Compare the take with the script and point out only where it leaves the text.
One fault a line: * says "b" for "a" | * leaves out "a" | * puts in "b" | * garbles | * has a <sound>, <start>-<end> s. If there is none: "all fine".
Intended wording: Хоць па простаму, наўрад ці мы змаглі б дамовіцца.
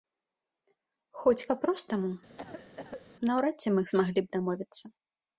* has a cough, 2.4-3.1 s